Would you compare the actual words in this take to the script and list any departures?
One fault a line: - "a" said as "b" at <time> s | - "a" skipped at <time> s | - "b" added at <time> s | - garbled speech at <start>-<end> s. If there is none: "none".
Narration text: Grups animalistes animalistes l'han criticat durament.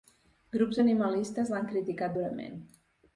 - "animalistes" skipped at 1.5 s